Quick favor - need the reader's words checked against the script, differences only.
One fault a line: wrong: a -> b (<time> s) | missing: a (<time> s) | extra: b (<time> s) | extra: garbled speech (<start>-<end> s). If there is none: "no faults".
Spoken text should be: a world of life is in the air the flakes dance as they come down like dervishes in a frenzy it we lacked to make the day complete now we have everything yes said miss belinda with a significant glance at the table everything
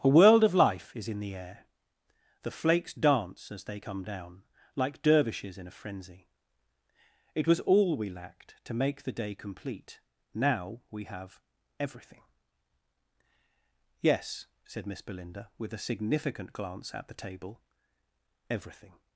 extra: was all (7.5 s)